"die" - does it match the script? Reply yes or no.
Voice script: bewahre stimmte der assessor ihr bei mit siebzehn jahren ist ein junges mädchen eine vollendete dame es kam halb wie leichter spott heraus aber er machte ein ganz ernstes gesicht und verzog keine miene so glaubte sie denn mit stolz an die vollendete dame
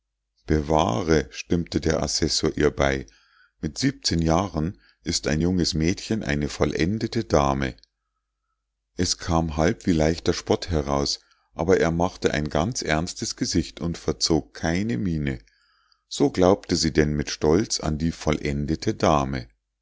yes